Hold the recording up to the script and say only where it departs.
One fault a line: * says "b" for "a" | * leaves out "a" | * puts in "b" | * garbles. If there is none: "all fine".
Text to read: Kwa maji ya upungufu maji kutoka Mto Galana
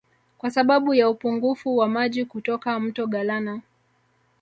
* says "sababu" for "maji"
* puts in "wa"